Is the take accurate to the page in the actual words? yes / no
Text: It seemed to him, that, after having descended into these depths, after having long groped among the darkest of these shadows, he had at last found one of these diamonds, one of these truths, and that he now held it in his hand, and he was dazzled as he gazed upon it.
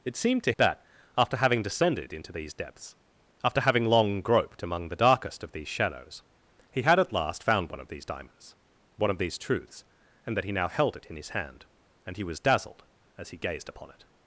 no